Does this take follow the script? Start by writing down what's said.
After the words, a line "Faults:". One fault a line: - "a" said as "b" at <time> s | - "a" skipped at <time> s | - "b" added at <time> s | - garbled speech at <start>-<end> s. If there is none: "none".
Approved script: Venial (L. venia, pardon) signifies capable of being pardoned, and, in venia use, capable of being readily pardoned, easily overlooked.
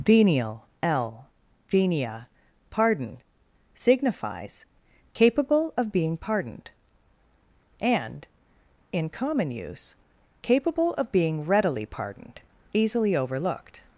Venial (L. venia, pardon) signifies capable of being pardoned, and, in common use, capable of being readily pardoned, easily overlooked.
Faults:
- "venia" said as "common" at 9.1 s